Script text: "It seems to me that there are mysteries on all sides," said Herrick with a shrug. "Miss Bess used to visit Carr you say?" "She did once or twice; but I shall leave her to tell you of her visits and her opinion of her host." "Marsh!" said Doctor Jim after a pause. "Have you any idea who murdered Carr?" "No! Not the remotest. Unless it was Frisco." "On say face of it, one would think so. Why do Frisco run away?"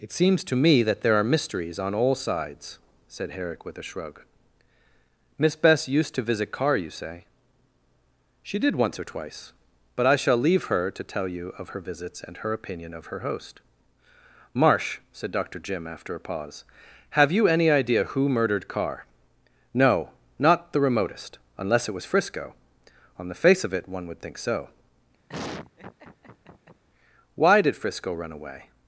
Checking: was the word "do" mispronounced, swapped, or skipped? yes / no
yes